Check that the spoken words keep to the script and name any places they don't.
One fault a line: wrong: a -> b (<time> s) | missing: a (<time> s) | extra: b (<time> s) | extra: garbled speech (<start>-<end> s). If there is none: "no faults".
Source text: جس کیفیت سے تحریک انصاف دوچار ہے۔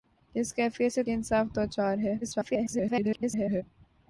missing: تحریک (1.0 s)
extra: garbled speech (2.2-3.6 s)